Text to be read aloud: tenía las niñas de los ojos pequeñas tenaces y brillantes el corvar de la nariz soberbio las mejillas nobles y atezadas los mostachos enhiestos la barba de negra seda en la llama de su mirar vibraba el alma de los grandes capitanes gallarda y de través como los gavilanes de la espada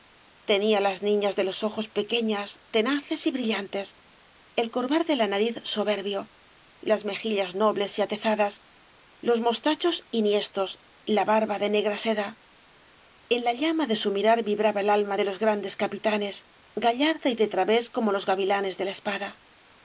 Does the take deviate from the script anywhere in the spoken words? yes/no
no